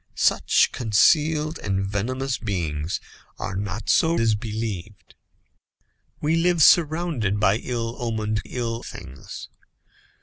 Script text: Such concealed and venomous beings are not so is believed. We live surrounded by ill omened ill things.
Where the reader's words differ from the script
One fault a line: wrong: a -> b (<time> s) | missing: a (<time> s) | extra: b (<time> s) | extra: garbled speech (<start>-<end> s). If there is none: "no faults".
no faults